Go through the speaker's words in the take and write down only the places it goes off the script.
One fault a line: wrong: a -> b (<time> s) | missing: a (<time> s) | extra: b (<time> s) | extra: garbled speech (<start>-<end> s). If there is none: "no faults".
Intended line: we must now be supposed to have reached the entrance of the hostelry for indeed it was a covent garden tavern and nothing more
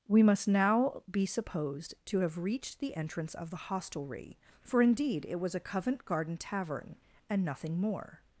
no faults